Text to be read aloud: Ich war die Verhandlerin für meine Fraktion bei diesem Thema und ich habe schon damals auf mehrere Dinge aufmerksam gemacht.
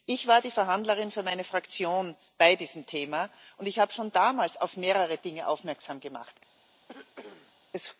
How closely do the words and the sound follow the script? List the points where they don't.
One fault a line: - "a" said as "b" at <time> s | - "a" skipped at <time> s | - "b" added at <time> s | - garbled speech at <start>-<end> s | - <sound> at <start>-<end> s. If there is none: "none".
- cough at 6.9-7.6 s